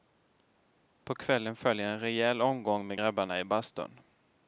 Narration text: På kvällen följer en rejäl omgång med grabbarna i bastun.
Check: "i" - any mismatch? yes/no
no